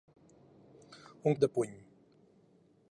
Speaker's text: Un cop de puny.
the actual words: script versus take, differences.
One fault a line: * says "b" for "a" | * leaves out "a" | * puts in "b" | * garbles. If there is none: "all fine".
* leaves out "cop"